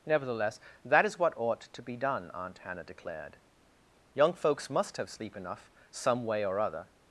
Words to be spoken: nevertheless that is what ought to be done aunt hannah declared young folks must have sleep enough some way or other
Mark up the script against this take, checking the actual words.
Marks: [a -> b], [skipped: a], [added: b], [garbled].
nevertheless that is what ought to be done aunt hannah declared young folks must have sleep enough some way or other